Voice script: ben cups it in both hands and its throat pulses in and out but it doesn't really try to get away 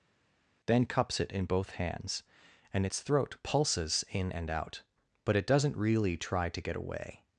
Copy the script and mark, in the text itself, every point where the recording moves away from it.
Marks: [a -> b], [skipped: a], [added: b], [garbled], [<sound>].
[ben -> then] cups it in both hands and its throat pulses in and out but it doesn't really try to get away